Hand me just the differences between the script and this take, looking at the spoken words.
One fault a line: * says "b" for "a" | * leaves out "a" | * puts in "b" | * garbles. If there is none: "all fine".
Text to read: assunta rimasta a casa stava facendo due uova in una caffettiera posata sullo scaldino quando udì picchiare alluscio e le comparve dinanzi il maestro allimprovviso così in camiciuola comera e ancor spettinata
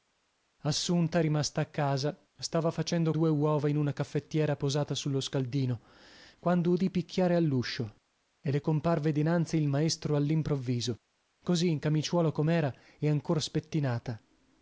all fine